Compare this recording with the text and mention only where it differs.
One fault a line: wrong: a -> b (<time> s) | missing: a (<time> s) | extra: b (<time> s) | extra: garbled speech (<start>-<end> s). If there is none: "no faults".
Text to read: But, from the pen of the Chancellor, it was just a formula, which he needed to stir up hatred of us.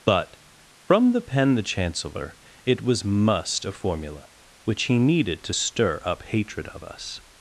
missing: of (1.6 s)
wrong: just -> must (3.0 s)